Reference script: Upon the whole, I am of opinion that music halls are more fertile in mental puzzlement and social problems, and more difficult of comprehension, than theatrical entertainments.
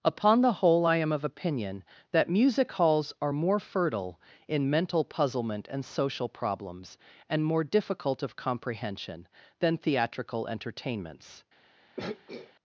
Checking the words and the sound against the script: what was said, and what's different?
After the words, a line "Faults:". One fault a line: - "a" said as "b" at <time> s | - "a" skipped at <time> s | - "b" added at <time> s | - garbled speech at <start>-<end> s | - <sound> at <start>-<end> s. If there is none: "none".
Upon the whole, I am of opinion that music halls are more fertile in mental puzzlement and social problems, and more difficult of comprehension, than theatrical entertainments.
Faults:
- throat clearing at 12.0-12.5 s